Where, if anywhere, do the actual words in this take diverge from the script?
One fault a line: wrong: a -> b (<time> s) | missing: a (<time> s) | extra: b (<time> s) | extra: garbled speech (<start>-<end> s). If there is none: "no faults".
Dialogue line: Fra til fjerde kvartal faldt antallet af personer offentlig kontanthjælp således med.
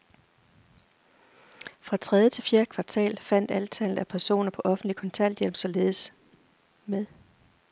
extra: tredje (2.0 s)
extra: på (4.5 s)